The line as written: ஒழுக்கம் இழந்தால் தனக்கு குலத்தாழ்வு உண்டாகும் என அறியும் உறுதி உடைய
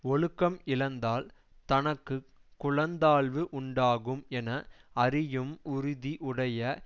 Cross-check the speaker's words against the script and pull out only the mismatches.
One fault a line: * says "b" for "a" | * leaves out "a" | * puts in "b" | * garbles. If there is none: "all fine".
all fine